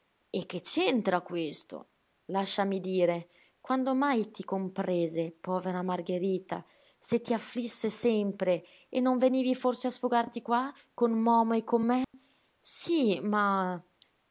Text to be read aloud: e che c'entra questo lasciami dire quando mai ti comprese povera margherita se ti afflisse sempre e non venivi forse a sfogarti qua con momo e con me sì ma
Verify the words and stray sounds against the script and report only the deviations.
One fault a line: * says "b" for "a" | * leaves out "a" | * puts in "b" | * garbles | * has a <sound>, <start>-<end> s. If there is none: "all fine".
* has a dropout, 12.0-12.1 s